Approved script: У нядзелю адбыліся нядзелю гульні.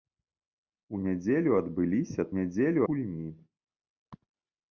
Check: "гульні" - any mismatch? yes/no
no